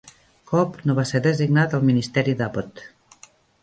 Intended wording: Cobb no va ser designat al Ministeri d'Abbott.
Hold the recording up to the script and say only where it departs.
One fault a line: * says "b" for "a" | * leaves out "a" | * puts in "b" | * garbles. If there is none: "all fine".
all fine